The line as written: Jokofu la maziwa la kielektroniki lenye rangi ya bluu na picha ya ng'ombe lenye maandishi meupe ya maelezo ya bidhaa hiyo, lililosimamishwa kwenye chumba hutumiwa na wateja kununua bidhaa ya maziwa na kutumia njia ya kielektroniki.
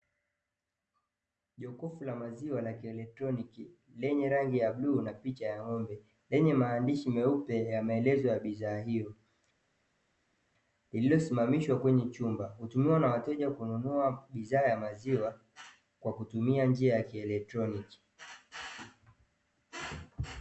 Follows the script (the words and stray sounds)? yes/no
no